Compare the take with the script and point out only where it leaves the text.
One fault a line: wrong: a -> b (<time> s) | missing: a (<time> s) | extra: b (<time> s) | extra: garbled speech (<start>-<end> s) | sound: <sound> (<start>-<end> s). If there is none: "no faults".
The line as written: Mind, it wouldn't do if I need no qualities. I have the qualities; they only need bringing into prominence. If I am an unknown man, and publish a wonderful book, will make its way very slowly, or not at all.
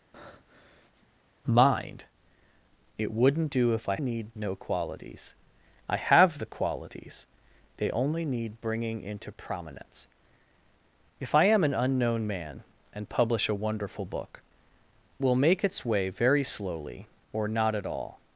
sound: breath (0.1-1.1 s)